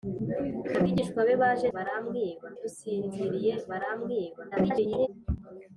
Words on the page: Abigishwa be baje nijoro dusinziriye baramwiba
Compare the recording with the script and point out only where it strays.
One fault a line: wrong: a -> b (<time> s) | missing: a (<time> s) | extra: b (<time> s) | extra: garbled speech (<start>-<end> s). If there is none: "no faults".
wrong: nijoro -> baramwiba (1.7 s)
extra: garbled speech (4.5-5.1 s)